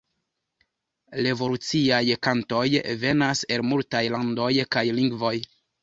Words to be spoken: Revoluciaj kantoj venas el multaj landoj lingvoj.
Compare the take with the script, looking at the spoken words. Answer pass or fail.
fail